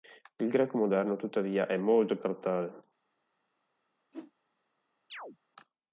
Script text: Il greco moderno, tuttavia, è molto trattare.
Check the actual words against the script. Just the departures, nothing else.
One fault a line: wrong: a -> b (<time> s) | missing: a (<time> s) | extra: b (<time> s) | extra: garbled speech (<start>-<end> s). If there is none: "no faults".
no faults